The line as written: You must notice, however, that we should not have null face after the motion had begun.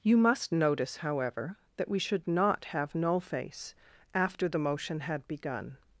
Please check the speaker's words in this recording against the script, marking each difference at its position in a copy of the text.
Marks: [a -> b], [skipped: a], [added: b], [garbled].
You must notice, however, that we should not have null face after the motion had begun.